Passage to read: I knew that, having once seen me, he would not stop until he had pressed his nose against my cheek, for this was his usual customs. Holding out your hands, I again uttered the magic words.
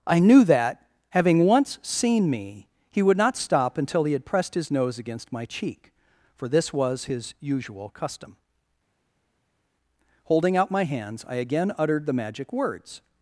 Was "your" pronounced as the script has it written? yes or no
no